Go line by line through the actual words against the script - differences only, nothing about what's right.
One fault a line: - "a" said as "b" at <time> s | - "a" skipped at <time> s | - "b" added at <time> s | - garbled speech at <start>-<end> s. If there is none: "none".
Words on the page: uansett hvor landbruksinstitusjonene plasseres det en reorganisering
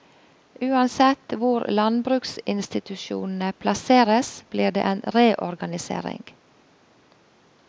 - "blir" added at 4.5 s